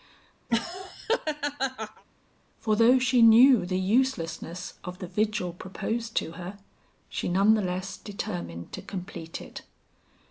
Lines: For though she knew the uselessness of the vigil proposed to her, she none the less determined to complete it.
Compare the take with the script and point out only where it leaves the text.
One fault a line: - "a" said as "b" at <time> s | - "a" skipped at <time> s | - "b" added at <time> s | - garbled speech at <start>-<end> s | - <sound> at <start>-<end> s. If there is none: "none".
- laugh at 0.5-2.0 s